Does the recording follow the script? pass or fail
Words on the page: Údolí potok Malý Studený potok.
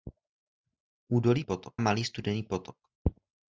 pass